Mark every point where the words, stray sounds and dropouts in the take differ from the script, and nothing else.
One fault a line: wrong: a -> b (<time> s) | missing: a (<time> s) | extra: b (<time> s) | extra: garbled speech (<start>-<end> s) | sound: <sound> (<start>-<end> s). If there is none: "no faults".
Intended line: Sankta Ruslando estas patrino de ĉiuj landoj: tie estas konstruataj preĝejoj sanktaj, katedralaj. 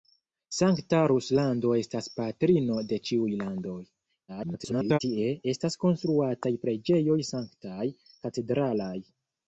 extra: garbled speech (4.3-5.0 s)